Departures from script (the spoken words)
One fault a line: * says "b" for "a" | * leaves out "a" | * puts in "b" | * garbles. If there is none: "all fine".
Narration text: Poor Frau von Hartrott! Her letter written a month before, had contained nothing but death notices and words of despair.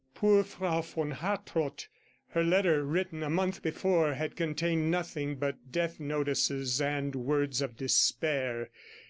all fine